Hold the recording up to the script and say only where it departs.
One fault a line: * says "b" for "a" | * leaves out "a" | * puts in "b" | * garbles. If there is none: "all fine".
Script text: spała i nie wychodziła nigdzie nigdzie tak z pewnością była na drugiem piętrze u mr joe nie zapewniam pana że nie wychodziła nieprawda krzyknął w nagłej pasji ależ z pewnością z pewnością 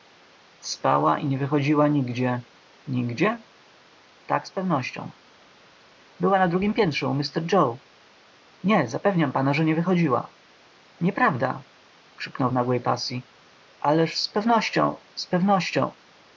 all fine